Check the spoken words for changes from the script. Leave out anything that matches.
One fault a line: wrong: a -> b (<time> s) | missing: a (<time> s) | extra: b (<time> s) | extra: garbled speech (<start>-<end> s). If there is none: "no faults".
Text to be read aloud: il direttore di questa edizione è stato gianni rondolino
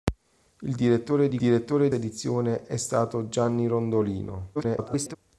wrong: questa -> direttore (1.4 s)
extra: garbled speech (4.5-5.2 s)